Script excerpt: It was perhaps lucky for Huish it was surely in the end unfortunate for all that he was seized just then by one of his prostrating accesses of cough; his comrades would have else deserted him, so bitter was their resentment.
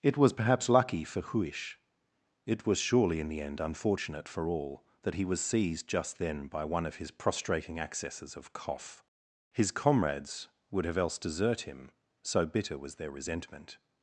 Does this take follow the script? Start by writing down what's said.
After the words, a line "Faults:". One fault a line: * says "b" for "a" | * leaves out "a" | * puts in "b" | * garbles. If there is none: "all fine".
It was perhaps lucky for Huish it was surely in the end unfortunate for all that he was seized just then by one of his prostrating accesses of cough; his comrades would have else desert him, so bitter was their resentment.
Faults:
* says "desert" for "deserted"